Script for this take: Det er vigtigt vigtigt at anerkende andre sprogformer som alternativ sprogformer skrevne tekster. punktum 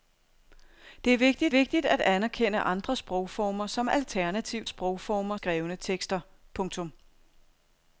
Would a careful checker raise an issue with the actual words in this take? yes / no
no